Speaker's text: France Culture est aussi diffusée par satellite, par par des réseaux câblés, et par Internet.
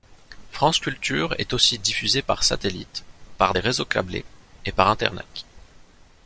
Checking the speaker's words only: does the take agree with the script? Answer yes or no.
no